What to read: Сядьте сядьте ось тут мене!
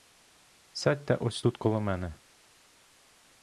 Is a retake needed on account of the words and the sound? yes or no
yes